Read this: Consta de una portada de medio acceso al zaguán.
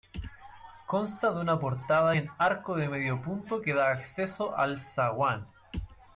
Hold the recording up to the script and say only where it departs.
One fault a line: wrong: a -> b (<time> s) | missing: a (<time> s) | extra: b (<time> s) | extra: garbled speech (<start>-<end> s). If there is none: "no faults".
extra: en arco (2.1 s)
extra: punto que da (3.2 s)